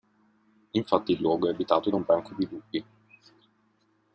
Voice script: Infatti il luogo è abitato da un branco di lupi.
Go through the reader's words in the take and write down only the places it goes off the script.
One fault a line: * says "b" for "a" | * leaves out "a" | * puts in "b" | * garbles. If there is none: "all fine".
all fine